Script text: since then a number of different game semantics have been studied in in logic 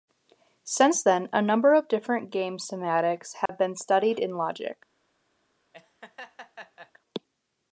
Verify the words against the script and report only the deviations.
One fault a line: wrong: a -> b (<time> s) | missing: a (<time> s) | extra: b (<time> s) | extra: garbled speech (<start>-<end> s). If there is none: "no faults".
missing: in (4.4 s)